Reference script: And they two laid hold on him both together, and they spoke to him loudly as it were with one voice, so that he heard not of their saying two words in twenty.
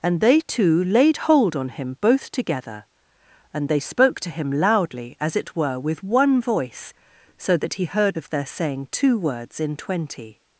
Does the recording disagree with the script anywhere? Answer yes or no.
yes